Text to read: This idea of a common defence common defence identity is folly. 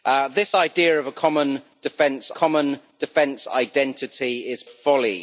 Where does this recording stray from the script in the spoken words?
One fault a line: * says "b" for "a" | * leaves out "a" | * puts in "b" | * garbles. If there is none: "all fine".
all fine